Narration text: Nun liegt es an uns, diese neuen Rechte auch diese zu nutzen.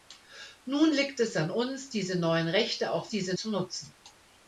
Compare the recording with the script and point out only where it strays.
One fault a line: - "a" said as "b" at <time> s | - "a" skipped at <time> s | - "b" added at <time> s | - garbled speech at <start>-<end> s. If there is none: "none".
none